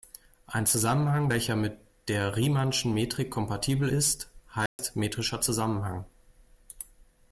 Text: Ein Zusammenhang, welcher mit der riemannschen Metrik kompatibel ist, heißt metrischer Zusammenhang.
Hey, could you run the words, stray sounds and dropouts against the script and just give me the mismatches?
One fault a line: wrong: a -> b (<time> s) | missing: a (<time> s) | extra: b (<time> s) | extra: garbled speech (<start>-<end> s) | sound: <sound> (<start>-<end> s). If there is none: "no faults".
sound: dropout (4.7-4.8 s)